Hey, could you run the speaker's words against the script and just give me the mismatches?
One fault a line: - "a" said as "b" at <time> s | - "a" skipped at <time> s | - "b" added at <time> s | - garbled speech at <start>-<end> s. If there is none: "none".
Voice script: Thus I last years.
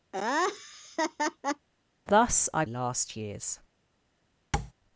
none